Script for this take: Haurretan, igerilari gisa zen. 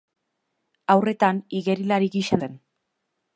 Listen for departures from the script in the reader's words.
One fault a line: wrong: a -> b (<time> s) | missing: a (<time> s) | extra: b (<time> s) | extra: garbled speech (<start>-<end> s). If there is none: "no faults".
no faults